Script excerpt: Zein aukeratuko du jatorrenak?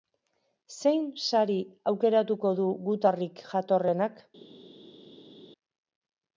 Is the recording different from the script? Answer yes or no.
yes